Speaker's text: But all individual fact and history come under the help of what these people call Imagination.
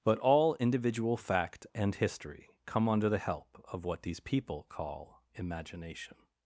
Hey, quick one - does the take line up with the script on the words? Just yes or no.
yes